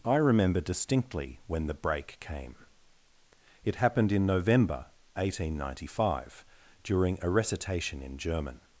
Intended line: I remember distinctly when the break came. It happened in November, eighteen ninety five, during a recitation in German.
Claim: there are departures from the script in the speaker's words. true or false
false